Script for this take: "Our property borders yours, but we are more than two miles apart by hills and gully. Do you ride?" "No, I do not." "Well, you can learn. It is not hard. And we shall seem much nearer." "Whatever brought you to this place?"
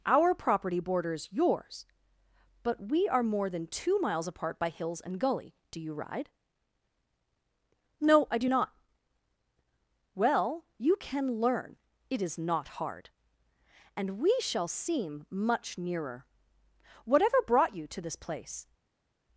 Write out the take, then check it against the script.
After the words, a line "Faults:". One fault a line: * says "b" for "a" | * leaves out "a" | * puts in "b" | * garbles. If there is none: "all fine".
"Our property borders yours, but we are more than two miles apart by hills and gully. Do you ride?" "No, I do not." "Well, you can learn. It is not hard. And we shall seem much nearer." "Whatever brought you to this place?"
Faults:
all fine